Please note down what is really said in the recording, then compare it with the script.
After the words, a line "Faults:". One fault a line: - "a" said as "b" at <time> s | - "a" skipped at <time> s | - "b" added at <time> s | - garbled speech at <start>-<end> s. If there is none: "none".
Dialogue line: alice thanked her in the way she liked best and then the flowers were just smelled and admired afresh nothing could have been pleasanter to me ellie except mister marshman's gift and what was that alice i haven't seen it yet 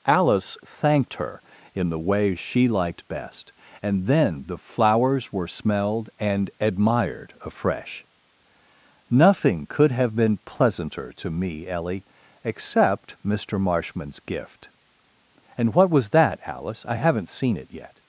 alice thanked her in the way she liked best and then the flowers were smelled and admired afresh nothing could have been pleasanter to me ellie except mister marshman's gift and what was that alice i haven't seen it yet
Faults:
- "just" skipped at 5.5 s